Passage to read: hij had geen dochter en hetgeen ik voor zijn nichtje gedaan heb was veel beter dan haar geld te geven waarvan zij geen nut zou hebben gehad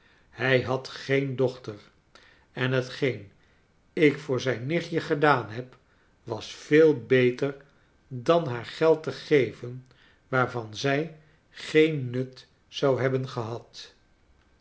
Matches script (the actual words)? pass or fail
pass